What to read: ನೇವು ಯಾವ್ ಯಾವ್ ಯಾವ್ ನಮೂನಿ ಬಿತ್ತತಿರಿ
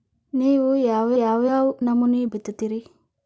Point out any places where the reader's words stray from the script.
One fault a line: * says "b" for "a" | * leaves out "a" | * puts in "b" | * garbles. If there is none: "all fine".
all fine